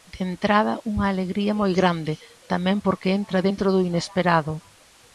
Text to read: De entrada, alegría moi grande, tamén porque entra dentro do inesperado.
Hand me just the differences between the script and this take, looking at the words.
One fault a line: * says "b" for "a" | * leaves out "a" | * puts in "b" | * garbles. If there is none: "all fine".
* puts in "unha"